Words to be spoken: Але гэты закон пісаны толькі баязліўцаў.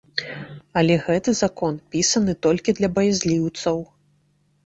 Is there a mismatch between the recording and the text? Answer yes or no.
yes